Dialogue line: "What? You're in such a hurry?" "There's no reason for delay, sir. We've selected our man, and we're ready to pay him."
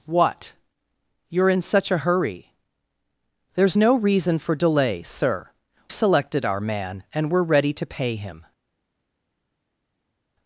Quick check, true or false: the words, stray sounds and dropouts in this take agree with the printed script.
false